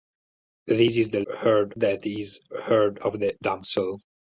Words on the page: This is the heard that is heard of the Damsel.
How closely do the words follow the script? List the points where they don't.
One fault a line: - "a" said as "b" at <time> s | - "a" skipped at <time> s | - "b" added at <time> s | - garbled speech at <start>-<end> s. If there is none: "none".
none